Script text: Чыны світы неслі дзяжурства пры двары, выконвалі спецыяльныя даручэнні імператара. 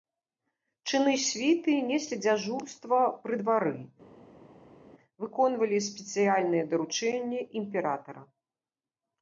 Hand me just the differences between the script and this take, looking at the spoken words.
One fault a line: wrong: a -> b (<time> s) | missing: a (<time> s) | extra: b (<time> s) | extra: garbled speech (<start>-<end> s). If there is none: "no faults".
no faults